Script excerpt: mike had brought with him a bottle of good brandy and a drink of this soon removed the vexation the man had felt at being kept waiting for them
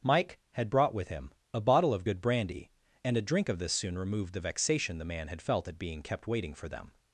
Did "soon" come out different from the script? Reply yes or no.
no